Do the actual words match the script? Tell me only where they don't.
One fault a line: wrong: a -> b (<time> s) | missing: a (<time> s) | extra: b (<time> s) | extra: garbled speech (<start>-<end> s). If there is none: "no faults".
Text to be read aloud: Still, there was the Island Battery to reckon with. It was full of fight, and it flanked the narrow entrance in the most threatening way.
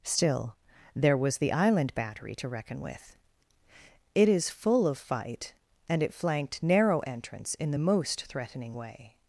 wrong: was -> is (4.3 s)
missing: the (6.7 s)